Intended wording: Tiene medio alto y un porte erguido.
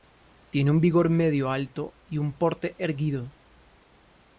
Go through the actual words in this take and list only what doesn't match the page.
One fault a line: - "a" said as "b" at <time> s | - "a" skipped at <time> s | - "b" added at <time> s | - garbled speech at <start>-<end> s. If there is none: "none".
- "un vigor" added at 0.7 s